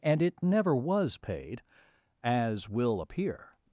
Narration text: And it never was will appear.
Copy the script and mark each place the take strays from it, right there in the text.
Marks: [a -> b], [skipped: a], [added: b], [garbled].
And it never was [added: paid as] will appear.